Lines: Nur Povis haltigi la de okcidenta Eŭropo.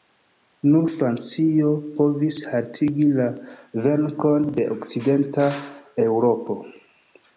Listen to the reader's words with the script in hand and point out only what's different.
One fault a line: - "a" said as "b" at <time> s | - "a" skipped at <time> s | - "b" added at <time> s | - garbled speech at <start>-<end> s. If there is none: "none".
- "Francio" added at 0.9 s
- "venkon" added at 3.9 s